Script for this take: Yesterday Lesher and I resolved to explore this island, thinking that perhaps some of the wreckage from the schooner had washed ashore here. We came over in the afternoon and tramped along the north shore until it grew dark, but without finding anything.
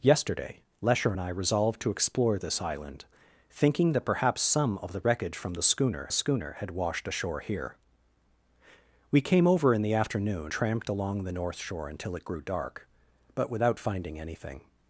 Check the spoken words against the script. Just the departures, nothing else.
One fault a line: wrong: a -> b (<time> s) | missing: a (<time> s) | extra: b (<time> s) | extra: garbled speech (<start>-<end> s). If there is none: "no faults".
extra: schooner (6.1 s)
missing: and (10.5 s)